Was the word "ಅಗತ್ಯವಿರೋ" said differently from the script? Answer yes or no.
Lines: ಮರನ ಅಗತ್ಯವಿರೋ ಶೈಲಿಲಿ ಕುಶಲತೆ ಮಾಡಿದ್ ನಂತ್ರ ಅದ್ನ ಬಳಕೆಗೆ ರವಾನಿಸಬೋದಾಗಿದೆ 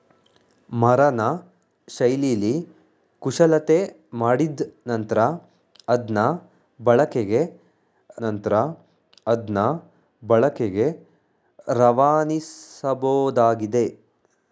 yes